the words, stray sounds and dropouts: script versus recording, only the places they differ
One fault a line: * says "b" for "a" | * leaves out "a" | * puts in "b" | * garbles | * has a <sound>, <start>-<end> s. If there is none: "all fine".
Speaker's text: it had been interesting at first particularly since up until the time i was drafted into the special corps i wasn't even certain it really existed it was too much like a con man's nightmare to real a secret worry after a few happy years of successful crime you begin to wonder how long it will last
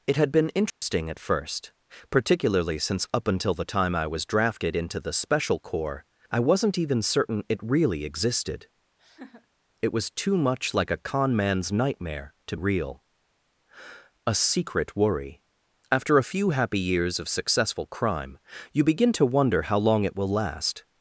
* has a dropout, 0.7-0.8 s
* has a laugh, 9.0-9.5 s